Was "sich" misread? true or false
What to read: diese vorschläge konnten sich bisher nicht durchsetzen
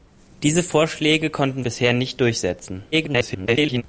true